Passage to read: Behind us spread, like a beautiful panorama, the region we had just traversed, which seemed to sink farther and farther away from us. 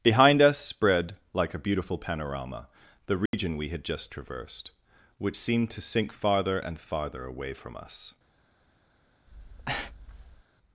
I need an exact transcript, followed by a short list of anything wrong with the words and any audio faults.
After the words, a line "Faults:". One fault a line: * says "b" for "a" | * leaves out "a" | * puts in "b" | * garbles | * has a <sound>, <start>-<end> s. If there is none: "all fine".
Behind us spread, like a beautiful panorama, the region we had just traversed, which seemed to sink farther and farther away from us.
Faults:
* has a dropout, 3.3-3.3 s
* has a breath, 9.3-10.4 s